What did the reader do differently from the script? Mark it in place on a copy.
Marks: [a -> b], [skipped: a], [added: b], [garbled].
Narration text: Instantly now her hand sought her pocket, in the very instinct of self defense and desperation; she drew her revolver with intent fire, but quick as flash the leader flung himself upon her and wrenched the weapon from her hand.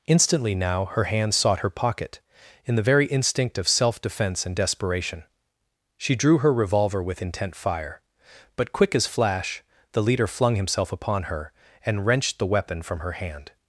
Instantly now her hand sought her pocket, in the very instinct of self defense and desperation; she drew her revolver with intent fire, but quick as flash the leader flung himself upon her and wrenched the weapon from her hand.